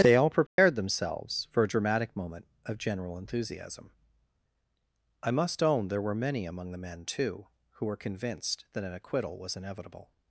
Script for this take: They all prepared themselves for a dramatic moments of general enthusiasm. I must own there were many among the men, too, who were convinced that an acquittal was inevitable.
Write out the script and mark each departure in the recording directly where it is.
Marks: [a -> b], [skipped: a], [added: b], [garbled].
They all prepared themselves for a dramatic [moments -> moment] of general enthusiasm. I must own there were many among the men, too, who were convinced that an acquittal was inevitable.